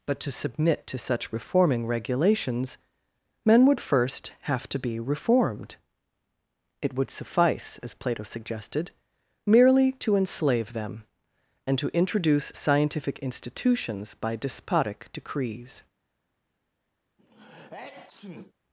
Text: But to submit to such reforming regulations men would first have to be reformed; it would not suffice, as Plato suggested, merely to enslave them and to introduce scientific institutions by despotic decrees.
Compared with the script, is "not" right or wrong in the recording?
wrong